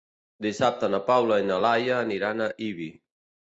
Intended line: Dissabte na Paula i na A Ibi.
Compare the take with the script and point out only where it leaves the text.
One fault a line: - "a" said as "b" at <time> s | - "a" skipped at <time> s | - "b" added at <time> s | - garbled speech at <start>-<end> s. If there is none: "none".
- "Laia aniran" added at 1.7 s